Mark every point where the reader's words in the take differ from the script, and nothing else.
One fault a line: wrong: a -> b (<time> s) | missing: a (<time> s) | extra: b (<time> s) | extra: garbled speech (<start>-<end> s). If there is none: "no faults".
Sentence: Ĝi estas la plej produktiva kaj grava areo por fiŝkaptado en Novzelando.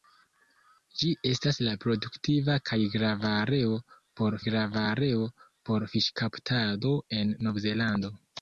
missing: plej (1.7 s)
extra: grava areo por (4.5 s)